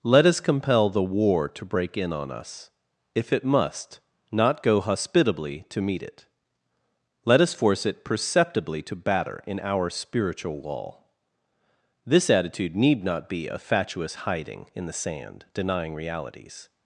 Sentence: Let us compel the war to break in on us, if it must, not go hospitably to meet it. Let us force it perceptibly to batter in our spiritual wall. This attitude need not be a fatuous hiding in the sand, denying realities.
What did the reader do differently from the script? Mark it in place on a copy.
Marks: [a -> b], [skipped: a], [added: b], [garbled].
Let us compel the war to break in on us, if it must, not go hospitably to meet it. Let us force it perceptibly to batter in our spiritual wall. This attitude need not be a fatuous hiding in the sand, denying realities.